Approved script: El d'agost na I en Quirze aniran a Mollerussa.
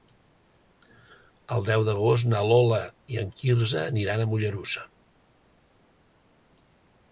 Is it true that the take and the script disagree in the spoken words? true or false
true